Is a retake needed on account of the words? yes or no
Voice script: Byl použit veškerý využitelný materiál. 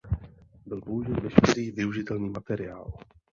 no